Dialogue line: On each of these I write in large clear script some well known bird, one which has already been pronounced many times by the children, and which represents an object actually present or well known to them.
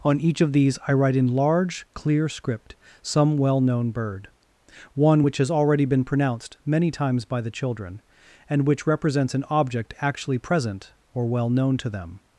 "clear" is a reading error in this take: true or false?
false